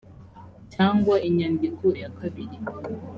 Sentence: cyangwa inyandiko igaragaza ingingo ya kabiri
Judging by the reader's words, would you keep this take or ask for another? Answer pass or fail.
fail